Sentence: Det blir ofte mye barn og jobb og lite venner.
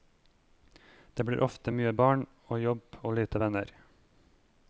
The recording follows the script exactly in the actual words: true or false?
true